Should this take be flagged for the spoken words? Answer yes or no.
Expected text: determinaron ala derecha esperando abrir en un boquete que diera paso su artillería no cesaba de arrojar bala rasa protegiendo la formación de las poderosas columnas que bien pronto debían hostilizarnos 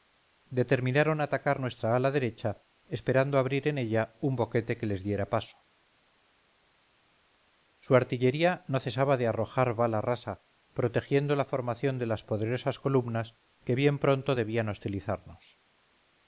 yes